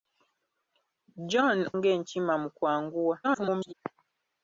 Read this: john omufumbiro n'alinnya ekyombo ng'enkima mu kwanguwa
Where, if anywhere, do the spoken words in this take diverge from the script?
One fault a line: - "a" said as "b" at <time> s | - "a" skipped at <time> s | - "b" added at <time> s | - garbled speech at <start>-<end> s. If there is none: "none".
- "omufumbiro n'alinnya ekyombo" skipped at 1.6 s
- garbled speech at 3.2-3.7 s